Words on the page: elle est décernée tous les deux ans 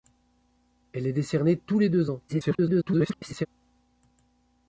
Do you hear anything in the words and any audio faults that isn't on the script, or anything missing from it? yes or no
yes